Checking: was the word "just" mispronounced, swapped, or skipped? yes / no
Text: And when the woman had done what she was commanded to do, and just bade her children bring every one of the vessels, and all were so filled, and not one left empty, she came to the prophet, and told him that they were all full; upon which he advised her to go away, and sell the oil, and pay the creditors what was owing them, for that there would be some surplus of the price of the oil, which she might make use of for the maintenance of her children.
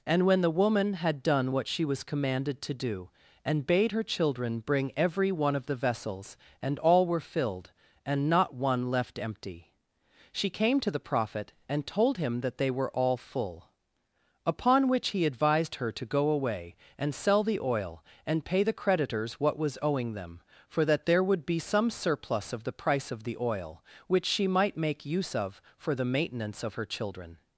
yes